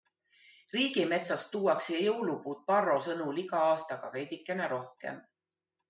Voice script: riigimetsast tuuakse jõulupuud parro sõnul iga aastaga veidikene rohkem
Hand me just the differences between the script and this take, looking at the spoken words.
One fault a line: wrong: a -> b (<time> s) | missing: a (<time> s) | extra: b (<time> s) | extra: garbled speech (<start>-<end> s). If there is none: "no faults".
no faults